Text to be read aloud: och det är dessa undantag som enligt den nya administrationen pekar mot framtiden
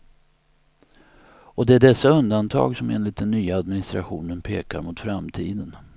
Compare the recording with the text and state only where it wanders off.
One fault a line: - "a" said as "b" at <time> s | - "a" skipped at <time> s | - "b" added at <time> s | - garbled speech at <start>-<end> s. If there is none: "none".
none